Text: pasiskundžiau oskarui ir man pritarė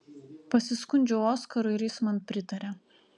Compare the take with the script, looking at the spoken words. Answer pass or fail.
fail